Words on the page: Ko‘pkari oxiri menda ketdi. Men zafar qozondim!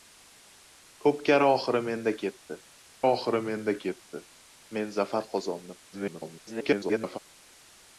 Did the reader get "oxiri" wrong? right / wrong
right